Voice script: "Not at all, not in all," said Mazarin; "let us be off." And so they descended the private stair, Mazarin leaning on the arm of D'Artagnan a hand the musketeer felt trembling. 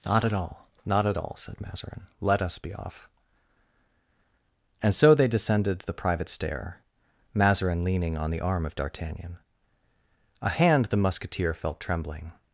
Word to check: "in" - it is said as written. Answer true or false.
false